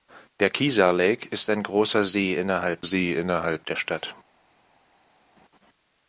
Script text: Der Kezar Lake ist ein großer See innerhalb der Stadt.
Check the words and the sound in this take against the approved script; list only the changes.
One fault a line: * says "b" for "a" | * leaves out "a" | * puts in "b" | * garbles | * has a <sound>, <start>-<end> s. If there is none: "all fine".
* puts in "See innerhalb"